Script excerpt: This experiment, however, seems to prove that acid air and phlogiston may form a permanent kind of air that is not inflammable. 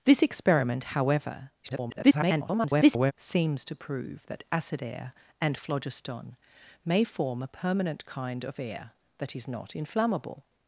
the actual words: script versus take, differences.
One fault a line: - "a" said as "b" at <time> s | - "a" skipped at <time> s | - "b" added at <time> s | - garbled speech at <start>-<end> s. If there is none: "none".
- garbled speech at 1.6-3.1 s